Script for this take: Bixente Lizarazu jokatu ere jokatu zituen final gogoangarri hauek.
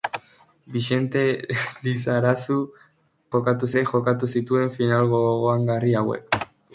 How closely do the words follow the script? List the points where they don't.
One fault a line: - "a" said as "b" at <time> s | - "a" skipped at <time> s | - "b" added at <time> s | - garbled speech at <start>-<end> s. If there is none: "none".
none